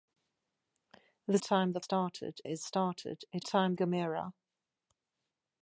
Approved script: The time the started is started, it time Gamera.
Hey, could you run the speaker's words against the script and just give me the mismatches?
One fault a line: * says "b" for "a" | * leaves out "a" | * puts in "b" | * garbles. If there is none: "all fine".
all fine